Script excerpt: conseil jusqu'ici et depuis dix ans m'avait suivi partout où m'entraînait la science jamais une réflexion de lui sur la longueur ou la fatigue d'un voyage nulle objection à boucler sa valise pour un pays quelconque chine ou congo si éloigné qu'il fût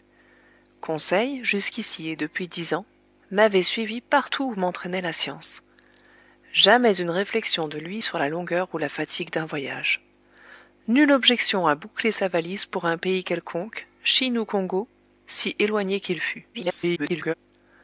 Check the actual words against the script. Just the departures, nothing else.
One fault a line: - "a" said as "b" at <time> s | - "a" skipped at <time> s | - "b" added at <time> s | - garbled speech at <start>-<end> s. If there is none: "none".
- garbled speech at 16.5-17.3 s